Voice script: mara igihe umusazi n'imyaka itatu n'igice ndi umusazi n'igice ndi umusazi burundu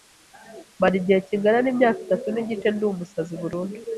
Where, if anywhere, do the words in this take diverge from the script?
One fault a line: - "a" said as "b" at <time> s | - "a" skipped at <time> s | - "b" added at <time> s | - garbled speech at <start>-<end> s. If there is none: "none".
- "umusazi" said as "kingana" at 1.3 s
- "n'igice ndi umusazi" skipped at 3.3 s